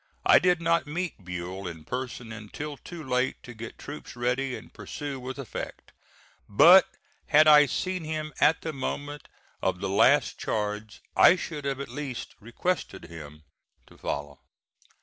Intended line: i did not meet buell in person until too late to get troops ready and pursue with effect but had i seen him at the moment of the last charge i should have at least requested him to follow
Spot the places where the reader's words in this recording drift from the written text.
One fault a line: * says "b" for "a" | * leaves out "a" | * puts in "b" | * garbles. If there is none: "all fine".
all fine